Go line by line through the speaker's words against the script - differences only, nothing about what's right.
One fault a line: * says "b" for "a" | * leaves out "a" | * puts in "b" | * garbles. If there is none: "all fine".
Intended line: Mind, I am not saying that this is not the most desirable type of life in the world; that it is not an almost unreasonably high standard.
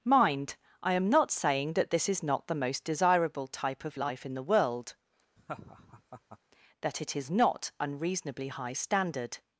* leaves out "an almost"